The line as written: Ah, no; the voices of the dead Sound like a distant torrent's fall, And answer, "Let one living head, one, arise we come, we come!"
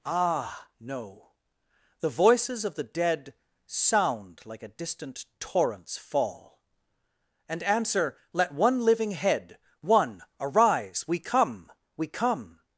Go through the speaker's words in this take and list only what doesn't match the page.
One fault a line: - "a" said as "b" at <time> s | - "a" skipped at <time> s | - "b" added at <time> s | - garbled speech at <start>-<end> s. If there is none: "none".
none